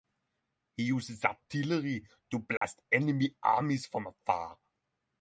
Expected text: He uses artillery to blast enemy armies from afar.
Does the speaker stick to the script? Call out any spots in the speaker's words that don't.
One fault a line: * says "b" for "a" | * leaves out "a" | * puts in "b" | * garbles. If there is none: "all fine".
all fine